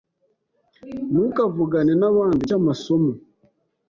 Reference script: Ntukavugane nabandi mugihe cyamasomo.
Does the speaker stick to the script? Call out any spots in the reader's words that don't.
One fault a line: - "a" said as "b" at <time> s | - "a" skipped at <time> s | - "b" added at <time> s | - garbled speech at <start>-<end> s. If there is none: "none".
- "mugihe" skipped at 2.4 s